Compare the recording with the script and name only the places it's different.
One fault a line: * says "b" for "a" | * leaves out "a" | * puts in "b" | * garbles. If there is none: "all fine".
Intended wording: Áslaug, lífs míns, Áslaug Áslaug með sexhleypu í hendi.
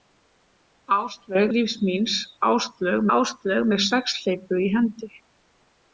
all fine